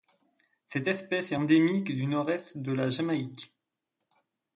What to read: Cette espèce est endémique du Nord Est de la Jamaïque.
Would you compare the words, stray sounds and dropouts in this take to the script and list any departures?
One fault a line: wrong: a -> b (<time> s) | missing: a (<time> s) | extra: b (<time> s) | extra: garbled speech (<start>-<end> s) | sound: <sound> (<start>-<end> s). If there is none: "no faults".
no faults